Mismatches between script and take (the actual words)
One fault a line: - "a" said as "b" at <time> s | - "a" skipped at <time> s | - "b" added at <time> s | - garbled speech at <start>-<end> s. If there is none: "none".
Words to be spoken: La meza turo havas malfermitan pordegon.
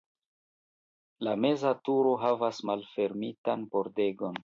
none